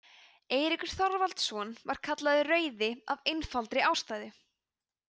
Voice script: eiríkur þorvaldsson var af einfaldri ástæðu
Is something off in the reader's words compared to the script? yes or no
yes